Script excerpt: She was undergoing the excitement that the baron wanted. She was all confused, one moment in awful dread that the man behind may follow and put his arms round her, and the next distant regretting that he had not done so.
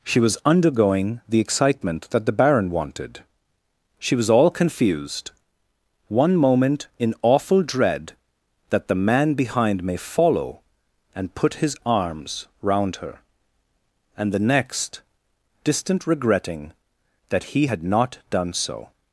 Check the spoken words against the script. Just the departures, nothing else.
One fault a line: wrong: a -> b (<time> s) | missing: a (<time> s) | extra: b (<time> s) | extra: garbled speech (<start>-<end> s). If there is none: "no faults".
no faults